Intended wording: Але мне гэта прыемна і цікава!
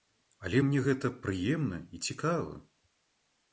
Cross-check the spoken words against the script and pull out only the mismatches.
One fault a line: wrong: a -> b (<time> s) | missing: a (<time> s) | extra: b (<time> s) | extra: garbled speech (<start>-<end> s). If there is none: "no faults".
no faults